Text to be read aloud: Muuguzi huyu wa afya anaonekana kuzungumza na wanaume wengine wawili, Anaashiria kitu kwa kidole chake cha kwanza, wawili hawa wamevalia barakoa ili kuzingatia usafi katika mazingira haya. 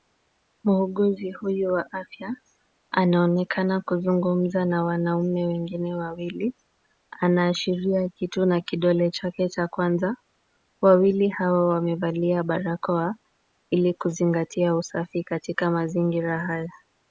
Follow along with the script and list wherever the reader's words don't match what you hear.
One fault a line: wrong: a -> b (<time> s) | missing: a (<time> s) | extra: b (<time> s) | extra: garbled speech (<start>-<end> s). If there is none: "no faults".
wrong: kwa -> na (8.4 s)